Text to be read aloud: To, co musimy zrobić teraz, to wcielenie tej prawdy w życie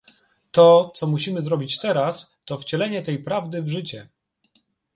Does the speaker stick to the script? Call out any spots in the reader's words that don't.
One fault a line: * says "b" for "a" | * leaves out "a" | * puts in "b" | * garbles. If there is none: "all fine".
all fine